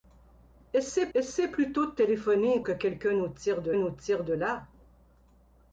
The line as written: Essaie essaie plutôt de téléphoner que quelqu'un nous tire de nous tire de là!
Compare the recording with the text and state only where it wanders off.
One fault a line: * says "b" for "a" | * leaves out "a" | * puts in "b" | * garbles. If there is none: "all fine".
all fine